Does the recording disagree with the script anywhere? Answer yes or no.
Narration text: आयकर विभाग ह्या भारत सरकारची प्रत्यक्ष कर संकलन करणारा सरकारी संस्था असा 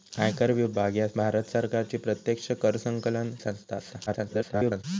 yes